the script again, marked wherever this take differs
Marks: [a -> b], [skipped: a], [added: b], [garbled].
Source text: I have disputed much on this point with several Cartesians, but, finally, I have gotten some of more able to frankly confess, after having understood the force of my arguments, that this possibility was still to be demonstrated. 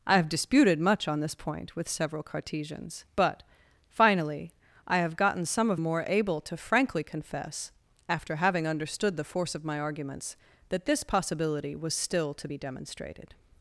I have disputed much on this point with several Cartesians, but, finally, I have gotten some of more able to frankly confess, after having understood the force of my arguments, that this possibility was still to be demonstrated.